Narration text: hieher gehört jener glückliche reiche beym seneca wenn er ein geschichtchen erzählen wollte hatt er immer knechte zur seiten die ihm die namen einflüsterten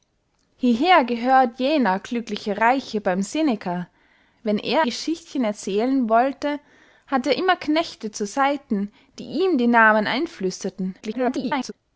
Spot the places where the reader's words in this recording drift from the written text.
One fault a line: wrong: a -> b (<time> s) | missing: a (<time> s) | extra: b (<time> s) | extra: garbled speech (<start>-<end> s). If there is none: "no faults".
missing: ein (4.8 s)
extra: garbled speech (11.0-11.7 s)